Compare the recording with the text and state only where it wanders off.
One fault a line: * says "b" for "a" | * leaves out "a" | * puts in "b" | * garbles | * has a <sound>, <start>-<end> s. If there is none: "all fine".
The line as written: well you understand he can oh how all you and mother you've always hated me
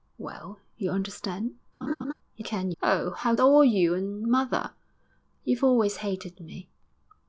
* has a laugh, 1.8-2.1 s